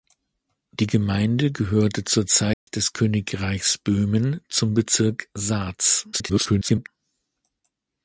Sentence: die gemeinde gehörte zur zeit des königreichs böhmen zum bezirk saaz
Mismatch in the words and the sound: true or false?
true